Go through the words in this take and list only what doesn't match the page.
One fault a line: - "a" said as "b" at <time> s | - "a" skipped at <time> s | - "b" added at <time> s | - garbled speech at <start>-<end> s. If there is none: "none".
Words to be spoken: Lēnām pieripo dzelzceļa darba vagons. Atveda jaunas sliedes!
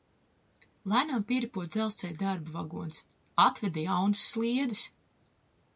none